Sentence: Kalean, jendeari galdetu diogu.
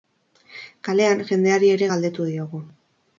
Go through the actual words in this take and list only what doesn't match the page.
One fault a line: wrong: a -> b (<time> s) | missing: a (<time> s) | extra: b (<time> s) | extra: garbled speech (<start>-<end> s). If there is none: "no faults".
extra: ere (1.8 s)